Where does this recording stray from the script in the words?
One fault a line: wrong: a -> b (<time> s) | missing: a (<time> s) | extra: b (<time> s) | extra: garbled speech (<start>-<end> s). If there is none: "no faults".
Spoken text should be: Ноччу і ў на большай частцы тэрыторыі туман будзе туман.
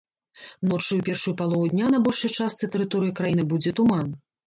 extra: першую палову дня (1.1 s)
wrong: туман -> краіны (3.2 s)